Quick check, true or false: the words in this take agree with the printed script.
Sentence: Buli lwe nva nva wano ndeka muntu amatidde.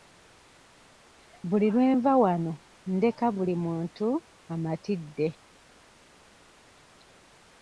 false